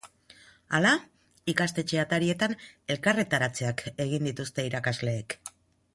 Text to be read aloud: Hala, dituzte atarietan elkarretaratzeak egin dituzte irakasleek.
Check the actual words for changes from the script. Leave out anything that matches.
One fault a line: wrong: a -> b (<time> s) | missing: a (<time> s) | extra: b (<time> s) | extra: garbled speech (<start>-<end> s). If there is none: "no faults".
wrong: dituzte -> ikastetxe (1.5 s)